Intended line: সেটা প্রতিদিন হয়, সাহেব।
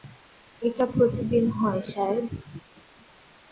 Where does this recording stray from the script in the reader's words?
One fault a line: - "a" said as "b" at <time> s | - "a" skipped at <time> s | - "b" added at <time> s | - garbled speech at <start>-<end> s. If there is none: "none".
- "সেটা" said as "এটা" at 0.6 s